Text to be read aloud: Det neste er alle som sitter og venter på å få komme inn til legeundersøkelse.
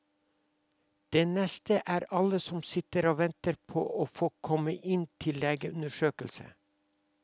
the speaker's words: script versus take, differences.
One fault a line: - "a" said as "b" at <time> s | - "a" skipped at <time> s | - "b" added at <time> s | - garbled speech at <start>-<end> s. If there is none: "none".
none